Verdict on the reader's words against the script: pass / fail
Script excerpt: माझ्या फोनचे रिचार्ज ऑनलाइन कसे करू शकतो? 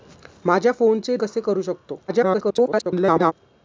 fail